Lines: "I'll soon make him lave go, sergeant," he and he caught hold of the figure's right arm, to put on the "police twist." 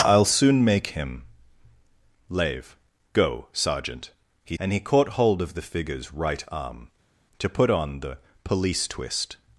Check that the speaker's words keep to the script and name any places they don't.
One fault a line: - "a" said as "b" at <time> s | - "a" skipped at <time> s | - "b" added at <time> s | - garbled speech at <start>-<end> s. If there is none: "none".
none